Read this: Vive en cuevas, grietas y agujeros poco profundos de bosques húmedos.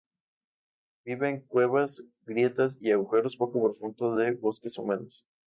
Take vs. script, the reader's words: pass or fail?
pass